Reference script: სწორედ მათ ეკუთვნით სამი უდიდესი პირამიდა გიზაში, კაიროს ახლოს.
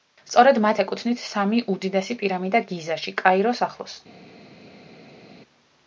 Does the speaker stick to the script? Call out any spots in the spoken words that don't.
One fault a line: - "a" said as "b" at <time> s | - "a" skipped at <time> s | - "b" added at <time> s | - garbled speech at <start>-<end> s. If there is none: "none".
none